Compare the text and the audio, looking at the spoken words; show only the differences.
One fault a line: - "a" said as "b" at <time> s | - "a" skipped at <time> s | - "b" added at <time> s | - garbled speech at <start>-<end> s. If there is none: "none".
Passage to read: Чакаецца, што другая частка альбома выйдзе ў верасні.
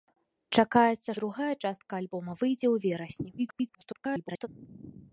- "што" skipped at 1.1 s
- garbled speech at 3.4-4.5 s